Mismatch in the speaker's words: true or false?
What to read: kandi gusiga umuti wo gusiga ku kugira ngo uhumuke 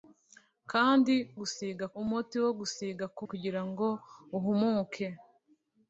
false